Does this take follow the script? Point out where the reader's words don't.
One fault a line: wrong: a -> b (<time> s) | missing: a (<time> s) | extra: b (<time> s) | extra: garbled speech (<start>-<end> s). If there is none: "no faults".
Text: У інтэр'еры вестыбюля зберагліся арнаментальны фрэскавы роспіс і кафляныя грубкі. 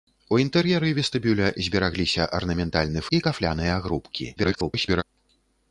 missing: фрэскавы роспіс (3.0 s)
extra: garbled speech (4.4-5.0 s)